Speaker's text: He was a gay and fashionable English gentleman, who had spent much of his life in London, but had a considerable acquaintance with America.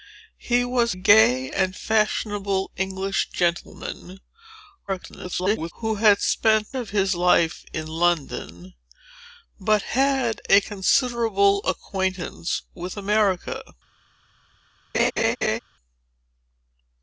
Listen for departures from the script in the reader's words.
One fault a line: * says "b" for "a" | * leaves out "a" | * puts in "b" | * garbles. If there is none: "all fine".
* leaves out "a"
* garbles
* leaves out "much"